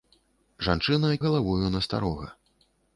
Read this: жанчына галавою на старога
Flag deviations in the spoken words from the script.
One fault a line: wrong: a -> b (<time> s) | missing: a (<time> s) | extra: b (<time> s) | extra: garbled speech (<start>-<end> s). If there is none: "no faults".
no faults